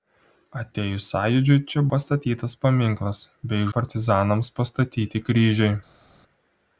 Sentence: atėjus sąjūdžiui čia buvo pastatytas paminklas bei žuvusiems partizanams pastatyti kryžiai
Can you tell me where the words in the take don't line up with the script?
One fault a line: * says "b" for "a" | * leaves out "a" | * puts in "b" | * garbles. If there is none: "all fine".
* leaves out "buvo"
* leaves out "žuvusiems"